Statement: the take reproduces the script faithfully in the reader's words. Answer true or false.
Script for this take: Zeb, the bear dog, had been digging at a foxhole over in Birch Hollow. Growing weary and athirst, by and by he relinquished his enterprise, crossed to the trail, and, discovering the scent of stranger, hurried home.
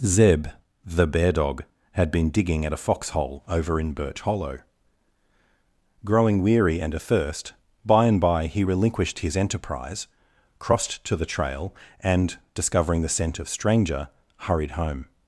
true